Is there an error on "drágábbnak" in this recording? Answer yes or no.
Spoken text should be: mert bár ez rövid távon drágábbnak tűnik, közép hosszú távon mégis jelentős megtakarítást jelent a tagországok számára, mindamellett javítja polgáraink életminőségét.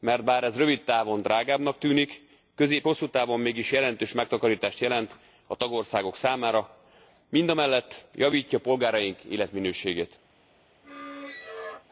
no